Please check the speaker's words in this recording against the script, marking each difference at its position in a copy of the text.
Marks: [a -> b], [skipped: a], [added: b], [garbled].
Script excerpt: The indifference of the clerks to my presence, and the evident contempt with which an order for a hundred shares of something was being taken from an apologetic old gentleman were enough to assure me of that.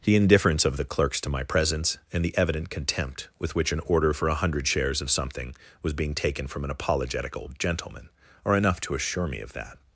The indifference of the clerks to my presence, and the evident contempt with which an order for a hundred shares of something was being taken from an apologetic old gentleman [were -> are] enough to assure me of that.